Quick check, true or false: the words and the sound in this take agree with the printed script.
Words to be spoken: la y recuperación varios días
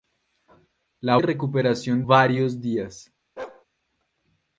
false